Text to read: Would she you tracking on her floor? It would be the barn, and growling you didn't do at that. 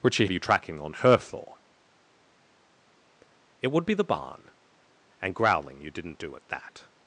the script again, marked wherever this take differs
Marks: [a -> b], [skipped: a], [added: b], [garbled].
Would she you tracking on her floor? It would be the barn, and growling you didn't do at that.